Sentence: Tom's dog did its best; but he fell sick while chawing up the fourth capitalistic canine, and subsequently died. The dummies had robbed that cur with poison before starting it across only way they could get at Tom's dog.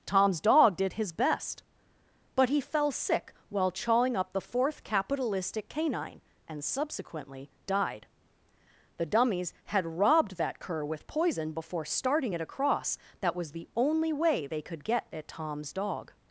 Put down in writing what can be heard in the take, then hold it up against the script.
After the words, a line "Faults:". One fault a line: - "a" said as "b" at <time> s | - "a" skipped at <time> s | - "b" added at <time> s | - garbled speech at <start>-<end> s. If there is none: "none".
Tom's dog did his best; but he fell sick while chawing up the fourth capitalistic canine, and subsequently died. The dummies had robbed that cur with poison before starting it across that was the only way they could get at Tom's dog.
Faults:
- "its" said as "his" at 0.9 s
- "that was the" added at 13.2 s